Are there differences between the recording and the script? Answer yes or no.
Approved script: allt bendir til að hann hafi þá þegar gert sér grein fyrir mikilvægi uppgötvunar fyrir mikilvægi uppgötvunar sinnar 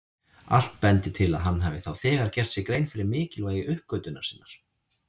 yes